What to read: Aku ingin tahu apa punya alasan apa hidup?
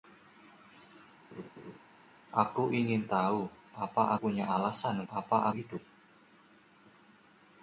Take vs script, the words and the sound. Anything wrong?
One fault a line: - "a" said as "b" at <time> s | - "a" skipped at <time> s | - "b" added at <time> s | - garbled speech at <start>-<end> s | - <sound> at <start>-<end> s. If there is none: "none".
- laugh at 1.3-1.8 s